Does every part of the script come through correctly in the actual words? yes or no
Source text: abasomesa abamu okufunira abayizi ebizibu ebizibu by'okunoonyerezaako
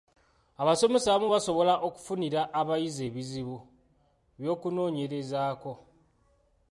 no